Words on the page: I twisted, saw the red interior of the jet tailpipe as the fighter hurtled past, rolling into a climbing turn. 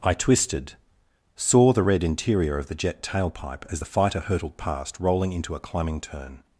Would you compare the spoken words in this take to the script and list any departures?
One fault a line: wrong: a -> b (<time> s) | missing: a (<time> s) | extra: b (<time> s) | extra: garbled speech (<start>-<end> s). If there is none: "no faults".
no faults